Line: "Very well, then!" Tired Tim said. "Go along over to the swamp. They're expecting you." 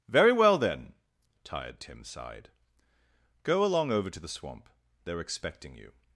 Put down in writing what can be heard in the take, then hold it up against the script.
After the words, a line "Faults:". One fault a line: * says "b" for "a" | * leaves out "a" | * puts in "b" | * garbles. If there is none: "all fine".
"Very well, then!" Tired Tim sighed. "Go along over to the swamp. They're expecting you."
Faults:
* says "sighed" for "said"